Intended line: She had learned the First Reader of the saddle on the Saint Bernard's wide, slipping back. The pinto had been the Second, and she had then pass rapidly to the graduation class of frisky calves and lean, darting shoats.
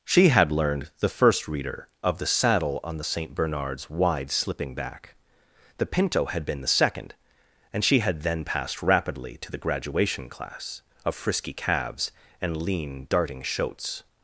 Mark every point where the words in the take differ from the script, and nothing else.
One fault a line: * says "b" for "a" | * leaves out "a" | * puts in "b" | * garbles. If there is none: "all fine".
* says "passed" for "pass"